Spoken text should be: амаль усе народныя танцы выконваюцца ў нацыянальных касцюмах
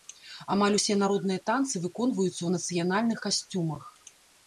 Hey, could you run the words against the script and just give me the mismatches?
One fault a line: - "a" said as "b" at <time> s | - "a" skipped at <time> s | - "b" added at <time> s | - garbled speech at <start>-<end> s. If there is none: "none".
none